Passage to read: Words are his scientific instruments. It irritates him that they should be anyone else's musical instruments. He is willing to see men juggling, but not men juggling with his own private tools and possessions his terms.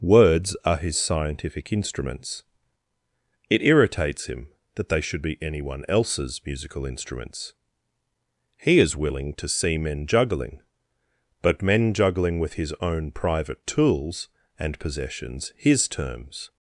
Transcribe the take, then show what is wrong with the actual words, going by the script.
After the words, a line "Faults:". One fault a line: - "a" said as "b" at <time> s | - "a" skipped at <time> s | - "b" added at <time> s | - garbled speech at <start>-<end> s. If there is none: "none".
Words are his scientific instruments. It irritates him that they should be anyone else's musical instruments. He is willing to see men juggling, but men juggling with his own private tools and possessions his terms.
Faults:
- "not" skipped at 11.6 s